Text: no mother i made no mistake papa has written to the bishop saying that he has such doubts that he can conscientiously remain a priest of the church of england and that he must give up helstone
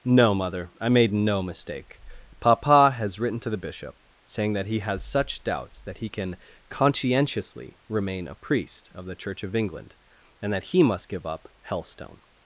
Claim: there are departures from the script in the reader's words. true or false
false